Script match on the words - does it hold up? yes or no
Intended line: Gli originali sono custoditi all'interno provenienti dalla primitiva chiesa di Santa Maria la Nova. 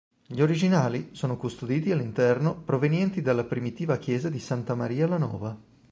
yes